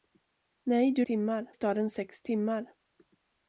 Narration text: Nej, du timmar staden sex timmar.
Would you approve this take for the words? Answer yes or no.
yes